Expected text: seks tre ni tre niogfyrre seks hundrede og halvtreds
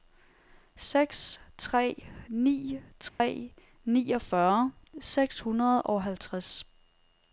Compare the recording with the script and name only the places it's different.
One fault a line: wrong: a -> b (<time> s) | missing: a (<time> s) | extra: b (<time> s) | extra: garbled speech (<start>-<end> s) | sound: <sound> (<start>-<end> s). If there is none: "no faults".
sound: dropout (3.1-3.2 s)